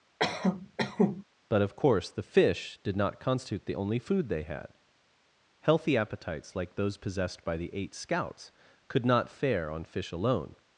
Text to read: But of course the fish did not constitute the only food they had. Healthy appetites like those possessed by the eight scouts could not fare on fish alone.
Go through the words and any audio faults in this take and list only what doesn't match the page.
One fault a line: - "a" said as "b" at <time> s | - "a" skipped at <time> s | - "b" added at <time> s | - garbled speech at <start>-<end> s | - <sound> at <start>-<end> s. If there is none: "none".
- cough at 0.2-1.2 s